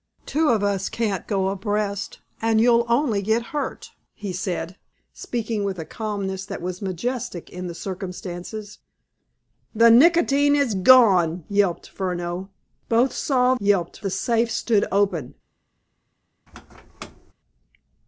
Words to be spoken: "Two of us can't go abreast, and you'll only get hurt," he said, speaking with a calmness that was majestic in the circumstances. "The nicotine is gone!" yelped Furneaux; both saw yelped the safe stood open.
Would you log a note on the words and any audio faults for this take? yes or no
yes